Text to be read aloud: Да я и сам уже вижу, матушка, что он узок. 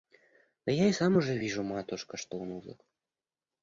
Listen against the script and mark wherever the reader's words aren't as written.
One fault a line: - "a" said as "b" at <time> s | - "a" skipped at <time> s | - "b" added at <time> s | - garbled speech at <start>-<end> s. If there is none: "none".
none